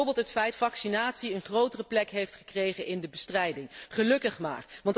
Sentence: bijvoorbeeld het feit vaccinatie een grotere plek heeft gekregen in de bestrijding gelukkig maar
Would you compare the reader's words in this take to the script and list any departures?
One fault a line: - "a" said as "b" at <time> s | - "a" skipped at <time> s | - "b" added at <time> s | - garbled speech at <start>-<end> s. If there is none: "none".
none